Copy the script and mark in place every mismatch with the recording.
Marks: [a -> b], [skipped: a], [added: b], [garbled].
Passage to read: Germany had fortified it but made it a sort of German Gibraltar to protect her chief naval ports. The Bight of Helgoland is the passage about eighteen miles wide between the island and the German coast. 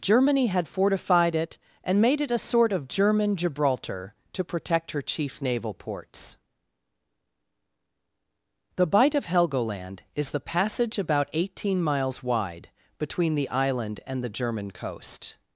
Germany had fortified it [but -> and] made it a sort of German Gibraltar to protect her chief naval ports. The Bight of Helgoland is the passage about eighteen miles wide between the island and the German coast.